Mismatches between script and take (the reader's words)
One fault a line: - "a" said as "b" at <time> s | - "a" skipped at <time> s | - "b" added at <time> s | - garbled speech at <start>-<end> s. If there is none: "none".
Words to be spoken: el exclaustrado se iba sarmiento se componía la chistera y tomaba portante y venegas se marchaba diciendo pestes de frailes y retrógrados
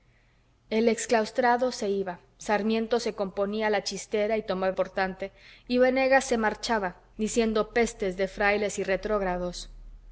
none